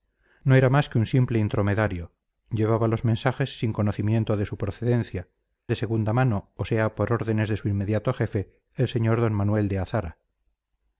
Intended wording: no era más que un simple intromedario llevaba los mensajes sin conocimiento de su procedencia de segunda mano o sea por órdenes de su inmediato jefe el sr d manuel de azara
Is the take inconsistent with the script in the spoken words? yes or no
no